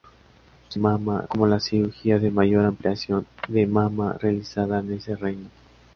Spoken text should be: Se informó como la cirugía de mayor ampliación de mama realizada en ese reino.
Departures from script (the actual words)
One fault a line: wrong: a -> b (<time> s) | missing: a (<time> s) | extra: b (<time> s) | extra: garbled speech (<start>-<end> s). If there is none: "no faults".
wrong: informó -> mama (0.8 s)